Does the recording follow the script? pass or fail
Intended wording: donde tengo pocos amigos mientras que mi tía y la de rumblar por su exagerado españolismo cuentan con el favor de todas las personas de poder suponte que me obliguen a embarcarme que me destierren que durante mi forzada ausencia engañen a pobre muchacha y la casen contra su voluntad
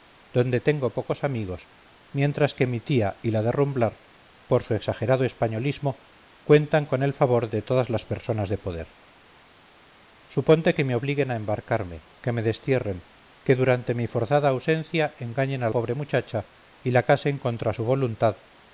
pass